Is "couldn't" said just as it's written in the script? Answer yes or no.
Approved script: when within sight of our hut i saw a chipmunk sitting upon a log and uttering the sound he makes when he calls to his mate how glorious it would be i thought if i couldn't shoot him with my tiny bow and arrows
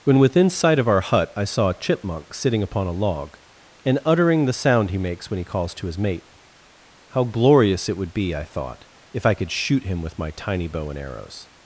no